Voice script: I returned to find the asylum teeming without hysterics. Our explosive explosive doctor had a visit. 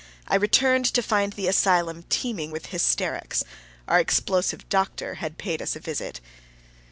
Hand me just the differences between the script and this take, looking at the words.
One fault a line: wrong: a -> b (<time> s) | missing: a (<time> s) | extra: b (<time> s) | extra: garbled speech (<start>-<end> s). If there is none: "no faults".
wrong: without -> with (2.5 s)
missing: explosive (4.7 s)
extra: paid us (5.4 s)